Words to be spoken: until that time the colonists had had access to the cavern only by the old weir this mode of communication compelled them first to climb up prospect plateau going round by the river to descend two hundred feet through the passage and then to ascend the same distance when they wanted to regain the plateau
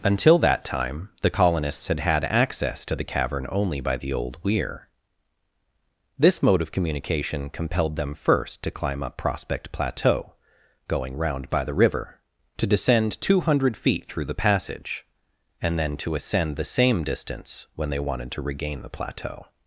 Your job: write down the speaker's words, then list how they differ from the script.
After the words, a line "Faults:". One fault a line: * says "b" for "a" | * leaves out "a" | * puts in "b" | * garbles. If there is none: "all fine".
until that time the colonists had had access to the cavern only by the old weir this mode of communication compelled them first to climb up prospect plateau going round by the river to descend two hundred feet through the passage and then to ascend the same distance when they wanted to regain the plateau
Faults:
all fine